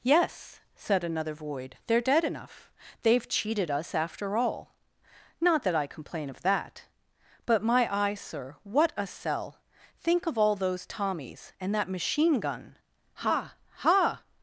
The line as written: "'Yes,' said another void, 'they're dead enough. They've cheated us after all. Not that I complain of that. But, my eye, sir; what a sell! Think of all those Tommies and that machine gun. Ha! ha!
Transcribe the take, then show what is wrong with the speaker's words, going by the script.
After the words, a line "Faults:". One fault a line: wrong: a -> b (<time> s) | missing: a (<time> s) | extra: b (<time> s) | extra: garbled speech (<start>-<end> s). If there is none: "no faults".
"'Yes,' said another void, 'they're dead enough. They've cheated us after all. Not that I complain of that. But, my eye, sir; what a sell! Think of all those Tommies and that machine gun. Ha! ha!
Faults:
no faults